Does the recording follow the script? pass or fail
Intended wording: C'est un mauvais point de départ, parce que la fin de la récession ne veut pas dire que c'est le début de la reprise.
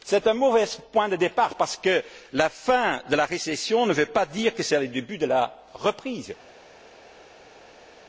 pass